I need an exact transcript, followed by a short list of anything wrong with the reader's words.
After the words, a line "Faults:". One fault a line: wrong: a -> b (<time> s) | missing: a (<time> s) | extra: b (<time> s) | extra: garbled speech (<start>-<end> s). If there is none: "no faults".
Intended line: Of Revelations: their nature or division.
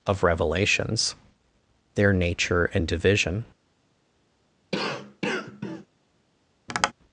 Of Revelations: their nature and division.
Faults:
wrong: or -> and (2.7 s)